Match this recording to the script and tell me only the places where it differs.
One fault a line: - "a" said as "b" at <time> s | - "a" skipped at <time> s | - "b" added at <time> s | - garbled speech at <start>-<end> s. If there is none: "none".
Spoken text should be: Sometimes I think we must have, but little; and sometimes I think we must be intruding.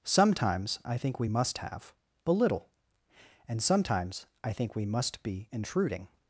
none